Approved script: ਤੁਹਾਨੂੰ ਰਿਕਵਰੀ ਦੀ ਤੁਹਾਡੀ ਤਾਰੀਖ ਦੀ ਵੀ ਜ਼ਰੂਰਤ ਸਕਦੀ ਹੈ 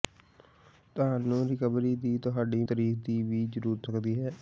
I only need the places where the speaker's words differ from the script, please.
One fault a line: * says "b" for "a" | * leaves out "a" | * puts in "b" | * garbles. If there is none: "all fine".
all fine